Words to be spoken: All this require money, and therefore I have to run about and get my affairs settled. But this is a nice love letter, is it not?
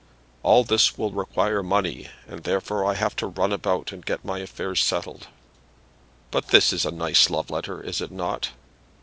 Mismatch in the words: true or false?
true